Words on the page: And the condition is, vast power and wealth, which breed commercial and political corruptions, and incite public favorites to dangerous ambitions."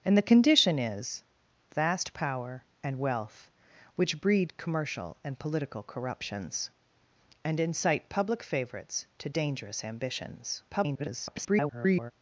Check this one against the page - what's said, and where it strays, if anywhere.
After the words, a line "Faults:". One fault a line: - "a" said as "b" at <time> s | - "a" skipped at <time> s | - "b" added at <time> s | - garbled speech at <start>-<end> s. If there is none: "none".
And the condition is, vast power and wealth, which breed commercial and political corruptions, and incite public favorites to dangerous ambitions." [garbled]
Faults:
- garbled speech at 10.7-12.1 s